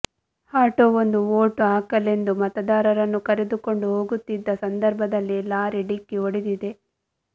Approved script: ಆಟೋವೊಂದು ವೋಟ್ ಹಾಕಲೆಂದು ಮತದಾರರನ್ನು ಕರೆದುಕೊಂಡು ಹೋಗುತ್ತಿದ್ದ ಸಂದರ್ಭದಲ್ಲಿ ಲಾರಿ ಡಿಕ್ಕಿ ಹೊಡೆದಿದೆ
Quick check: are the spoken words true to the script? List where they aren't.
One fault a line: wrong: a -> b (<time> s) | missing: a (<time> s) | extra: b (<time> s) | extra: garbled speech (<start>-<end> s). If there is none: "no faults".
no faults